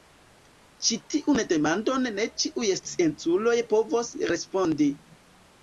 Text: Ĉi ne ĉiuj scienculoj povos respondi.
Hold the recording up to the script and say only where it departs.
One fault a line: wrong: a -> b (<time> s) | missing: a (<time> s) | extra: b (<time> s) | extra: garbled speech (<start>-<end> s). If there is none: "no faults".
extra: tiun demandon (1.1 s)